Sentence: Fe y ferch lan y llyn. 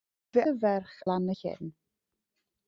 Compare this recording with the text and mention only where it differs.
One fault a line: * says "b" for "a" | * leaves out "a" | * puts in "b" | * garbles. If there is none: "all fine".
all fine